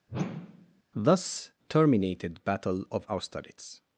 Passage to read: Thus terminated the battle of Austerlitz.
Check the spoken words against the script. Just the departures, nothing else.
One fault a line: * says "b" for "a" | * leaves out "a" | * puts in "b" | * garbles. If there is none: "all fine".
* leaves out "the"